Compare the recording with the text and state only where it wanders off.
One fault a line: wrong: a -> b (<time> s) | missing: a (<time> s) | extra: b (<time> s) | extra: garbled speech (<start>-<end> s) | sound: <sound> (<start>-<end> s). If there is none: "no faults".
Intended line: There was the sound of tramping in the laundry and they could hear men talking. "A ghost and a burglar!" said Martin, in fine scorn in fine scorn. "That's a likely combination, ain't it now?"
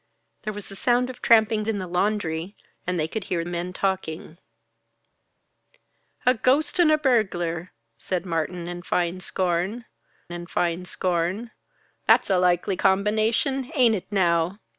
no faults